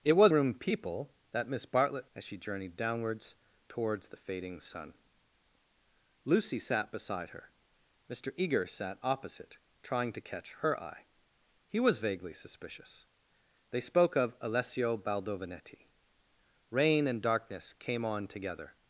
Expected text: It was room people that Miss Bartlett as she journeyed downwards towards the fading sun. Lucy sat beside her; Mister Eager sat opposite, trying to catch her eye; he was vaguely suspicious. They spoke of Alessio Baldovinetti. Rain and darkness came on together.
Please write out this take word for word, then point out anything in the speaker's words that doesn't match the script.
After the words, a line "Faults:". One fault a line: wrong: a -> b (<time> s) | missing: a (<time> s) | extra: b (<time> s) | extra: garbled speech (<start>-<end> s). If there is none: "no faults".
It was room people that Miss Bartlett as she journeyed downwards towards the fading sun. Lucy sat beside her; Mister Eager sat opposite, trying to catch her eye; he was vaguely suspicious. They spoke of Alessio Baldovinetti. Rain and darkness came on together.
Faults:
no faults